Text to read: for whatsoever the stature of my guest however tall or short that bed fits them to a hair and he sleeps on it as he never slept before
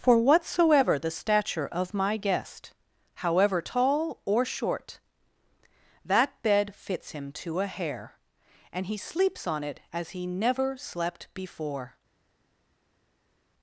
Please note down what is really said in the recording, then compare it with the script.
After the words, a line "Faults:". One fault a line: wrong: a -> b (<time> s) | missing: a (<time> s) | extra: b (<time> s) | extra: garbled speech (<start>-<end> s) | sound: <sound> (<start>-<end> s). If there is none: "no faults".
for whatsoever the stature of my guest however tall or short that bed fits him to a hair and he sleeps on it as he never slept before
Faults:
wrong: them -> him (7.1 s)